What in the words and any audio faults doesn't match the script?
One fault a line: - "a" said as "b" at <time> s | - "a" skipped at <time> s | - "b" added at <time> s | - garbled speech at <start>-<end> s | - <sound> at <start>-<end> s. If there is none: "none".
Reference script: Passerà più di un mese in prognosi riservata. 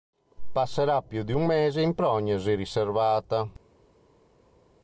none